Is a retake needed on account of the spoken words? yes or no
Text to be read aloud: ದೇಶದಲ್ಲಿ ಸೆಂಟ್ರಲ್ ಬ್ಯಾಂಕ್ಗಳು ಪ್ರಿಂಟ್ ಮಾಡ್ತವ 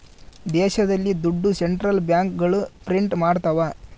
yes